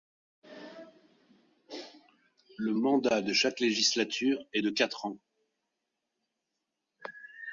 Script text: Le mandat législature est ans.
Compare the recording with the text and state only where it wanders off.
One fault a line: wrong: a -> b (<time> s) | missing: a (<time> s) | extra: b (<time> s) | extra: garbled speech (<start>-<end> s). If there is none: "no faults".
extra: de chaque (3.2 s)
extra: de quatre (4.6 s)